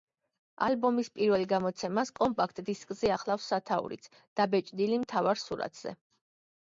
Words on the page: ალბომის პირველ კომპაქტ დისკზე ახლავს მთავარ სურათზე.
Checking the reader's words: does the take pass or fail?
fail